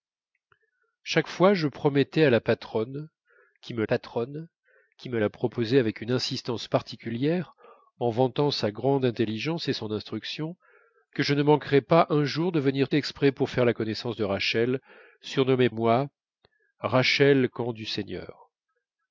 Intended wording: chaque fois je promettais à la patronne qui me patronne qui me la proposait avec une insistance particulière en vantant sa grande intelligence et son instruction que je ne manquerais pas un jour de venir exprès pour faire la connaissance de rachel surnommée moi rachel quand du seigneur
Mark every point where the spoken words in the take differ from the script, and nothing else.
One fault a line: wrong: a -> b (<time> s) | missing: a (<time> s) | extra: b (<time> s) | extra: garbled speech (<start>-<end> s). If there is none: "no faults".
no faults